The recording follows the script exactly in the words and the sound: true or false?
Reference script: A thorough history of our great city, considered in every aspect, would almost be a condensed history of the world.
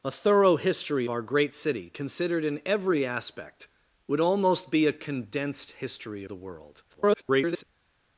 false